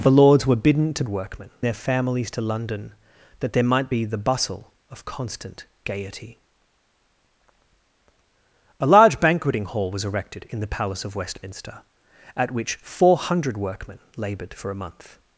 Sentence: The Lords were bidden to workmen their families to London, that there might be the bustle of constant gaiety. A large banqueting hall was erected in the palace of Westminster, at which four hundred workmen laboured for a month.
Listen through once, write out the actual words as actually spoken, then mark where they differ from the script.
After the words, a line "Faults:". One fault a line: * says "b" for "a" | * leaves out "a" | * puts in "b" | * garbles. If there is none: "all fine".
The Lords were bidden to workmen their families to London, that there might be the bustle of constant gaiety. A large banqueting hall was erected in the palace of Westminster, at which four hundred workmen laboured for a month.
Faults:
all fine